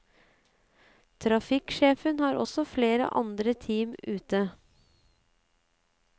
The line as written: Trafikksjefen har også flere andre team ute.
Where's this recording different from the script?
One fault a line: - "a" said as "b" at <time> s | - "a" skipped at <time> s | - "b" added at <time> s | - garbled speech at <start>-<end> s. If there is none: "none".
none